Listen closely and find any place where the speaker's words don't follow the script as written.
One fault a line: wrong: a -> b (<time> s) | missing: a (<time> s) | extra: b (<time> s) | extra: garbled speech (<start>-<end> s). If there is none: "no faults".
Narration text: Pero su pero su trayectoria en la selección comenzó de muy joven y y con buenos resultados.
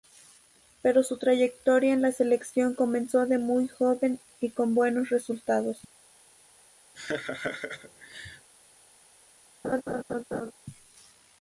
missing: pero su (1.2 s)
missing: y (4.5 s)